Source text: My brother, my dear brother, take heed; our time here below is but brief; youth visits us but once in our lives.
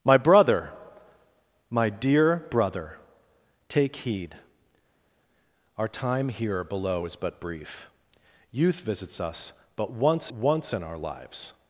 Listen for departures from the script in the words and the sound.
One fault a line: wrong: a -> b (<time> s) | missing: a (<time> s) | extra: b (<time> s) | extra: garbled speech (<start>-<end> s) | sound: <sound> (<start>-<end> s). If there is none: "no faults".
extra: once (10.3 s)